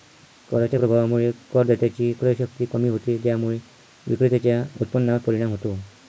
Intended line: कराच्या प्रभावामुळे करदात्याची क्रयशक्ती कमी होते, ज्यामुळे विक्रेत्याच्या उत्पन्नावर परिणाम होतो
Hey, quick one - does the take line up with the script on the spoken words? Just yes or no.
yes